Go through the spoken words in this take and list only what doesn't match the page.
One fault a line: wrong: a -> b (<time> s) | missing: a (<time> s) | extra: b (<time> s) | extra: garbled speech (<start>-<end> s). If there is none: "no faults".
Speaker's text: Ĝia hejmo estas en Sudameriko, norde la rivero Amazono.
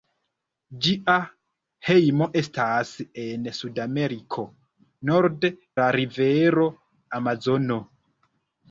no faults